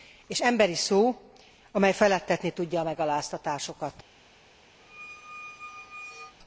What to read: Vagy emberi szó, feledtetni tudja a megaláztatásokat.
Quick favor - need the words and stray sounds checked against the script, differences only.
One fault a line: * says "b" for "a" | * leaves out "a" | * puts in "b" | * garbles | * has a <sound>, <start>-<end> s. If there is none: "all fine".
* says "És" for "Vagy"
* puts in "amely"
* has a squeak, 4.8-6.3 s